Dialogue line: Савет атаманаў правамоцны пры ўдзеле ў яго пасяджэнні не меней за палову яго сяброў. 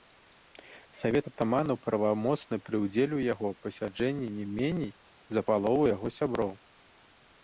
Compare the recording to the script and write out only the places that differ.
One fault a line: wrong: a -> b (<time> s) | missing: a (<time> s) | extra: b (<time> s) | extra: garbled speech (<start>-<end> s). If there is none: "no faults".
no faults